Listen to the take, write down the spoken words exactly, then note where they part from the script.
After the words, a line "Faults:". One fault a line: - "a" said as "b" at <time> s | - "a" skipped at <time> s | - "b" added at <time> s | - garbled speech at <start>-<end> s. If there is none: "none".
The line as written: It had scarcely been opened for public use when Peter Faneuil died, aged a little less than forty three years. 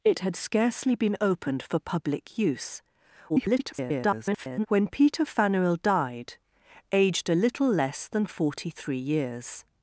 It had scarcely been opened for public use [garbled] when Peter Faneuil died, aged a little less than forty three years.
Faults:
- garbled speech at 3.3-4.7 s